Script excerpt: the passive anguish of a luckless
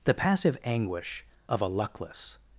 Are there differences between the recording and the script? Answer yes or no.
no